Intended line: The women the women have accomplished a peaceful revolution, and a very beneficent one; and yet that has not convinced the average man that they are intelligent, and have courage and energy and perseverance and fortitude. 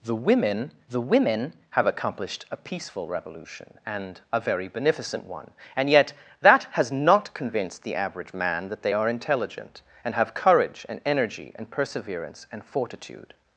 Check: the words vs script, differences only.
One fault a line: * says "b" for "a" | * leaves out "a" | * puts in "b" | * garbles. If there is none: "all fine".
all fine